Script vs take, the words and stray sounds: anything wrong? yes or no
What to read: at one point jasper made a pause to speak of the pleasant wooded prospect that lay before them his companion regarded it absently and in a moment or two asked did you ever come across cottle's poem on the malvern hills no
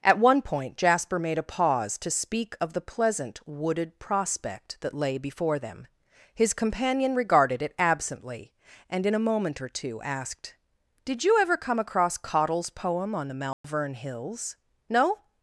yes